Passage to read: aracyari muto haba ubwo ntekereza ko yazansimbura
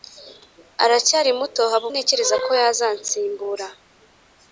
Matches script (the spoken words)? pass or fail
fail